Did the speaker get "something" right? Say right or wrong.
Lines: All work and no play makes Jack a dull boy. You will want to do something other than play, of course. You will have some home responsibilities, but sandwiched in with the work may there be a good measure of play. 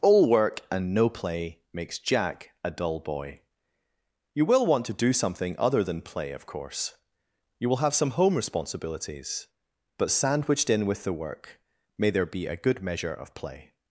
right